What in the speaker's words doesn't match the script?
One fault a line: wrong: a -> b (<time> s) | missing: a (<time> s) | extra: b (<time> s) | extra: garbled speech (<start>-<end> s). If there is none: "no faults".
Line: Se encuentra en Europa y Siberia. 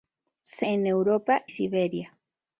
missing: encuentra (0.7 s)
missing: y (1.5 s)